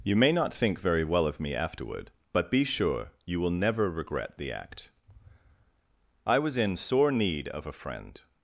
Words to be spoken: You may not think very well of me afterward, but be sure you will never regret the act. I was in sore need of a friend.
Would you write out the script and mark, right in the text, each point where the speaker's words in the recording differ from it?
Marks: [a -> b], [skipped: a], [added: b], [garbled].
You may not think very well of me afterward, but be sure you will never regret the act. I was in sore need of a friend.